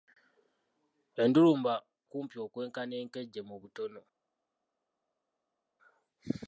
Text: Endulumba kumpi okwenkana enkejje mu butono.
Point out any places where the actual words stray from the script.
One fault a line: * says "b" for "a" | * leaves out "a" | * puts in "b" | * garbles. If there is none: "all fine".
all fine